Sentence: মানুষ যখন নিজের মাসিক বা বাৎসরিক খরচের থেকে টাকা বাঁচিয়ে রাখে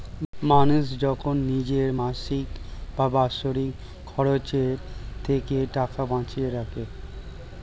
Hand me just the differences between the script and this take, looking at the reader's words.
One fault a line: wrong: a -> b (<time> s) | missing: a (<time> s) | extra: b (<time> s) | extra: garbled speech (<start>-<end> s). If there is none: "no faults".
no faults